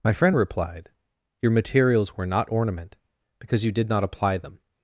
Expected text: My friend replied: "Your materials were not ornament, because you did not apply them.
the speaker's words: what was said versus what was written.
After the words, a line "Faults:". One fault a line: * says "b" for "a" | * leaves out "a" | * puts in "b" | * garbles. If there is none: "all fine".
My friend replied: "Your materials were not ornament, because you did not apply them.
Faults:
all fine